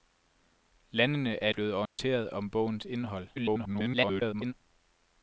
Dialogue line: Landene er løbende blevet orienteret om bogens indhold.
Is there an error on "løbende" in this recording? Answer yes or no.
yes